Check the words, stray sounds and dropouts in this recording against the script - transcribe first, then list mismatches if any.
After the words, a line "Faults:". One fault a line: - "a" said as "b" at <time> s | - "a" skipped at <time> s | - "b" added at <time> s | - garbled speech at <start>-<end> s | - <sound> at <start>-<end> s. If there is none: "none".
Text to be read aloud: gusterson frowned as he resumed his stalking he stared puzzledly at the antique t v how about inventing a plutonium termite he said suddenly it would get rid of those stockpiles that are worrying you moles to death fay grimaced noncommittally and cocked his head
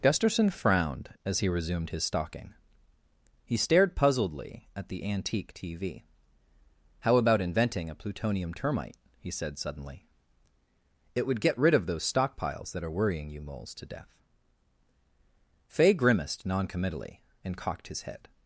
gusterson frowned as he resumed his stalking he stared puzzledly at the antique t v how about inventing a plutonium termite he said suddenly it would get rid of those stockpiles that are worrying you moles to death fay grimaced noncommittally and cocked his head
Faults:
none